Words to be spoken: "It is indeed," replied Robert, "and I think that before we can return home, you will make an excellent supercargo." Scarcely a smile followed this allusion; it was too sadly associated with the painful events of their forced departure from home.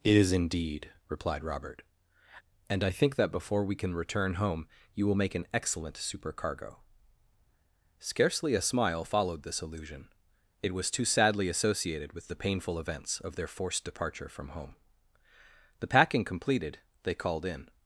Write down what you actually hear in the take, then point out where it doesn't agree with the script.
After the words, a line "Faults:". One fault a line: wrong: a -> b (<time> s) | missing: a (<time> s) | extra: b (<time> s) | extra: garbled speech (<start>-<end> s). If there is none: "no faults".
"It is indeed," replied Robert, "and I think that before we can return home, you will make an excellent supercargo." Scarcely a smile followed this allusion; it was too sadly associated with the painful events of their forced departure from home. The packing completed, they called in
Faults:
extra: The packing completed they called in (15.8 s)